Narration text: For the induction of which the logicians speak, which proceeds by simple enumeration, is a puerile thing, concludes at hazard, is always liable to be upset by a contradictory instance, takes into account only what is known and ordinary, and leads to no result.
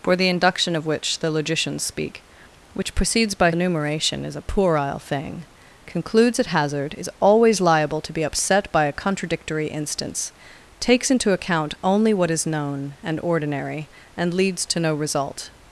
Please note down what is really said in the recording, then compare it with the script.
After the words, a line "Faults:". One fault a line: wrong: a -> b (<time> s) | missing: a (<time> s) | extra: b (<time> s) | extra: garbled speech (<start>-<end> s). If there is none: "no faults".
For the induction of which the logicians speak, which proceeds by enumeration, is a puerile thing, concludes at hazard, is always liable to be upset by a contradictory instance, takes into account only what is known and ordinary, and leads to no result.
Faults:
missing: simple (3.5 s)